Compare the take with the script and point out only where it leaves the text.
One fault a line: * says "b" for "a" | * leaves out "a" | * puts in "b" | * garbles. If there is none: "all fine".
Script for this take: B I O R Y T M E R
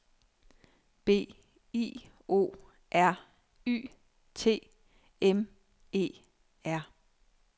all fine